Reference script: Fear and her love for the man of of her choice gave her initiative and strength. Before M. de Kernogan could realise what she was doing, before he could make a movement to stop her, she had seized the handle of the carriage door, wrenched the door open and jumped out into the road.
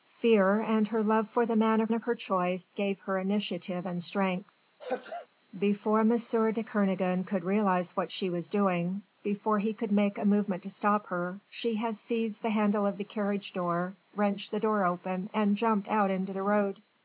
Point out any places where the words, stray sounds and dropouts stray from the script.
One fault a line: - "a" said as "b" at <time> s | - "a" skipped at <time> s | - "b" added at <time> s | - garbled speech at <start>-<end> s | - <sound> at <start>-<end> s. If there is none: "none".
- sneeze at 4.8-5.3 s